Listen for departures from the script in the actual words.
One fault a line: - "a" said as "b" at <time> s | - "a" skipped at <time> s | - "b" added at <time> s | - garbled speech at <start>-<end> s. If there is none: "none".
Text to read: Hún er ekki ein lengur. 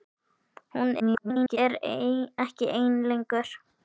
- garbled speech at 1.0-1.6 s